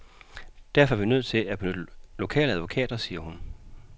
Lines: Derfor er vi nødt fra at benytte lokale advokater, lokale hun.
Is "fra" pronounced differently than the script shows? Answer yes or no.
yes